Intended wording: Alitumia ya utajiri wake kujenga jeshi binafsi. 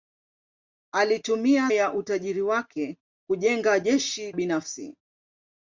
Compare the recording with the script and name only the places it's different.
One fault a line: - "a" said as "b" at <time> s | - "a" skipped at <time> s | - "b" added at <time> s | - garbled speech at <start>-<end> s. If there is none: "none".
none